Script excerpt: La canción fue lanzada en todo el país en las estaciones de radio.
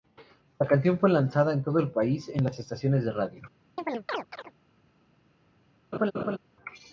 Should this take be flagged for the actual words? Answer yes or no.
no